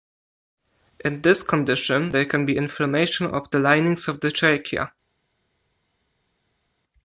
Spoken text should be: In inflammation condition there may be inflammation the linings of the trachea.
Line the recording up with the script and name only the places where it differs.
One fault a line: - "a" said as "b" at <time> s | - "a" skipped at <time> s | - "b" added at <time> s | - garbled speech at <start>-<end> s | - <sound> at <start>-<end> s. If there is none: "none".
- "inflammation" said as "this" at 1.2 s
- "may" said as "can" at 2.2 s
- "of" added at 3.2 s